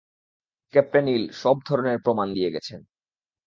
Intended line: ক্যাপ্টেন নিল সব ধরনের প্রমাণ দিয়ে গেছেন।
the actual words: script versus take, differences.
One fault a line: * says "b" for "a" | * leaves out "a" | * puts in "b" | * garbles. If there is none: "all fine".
all fine